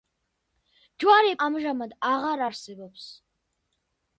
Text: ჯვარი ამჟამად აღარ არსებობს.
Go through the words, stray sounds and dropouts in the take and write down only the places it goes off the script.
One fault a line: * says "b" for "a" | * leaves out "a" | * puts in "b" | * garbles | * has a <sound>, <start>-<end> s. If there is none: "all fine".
all fine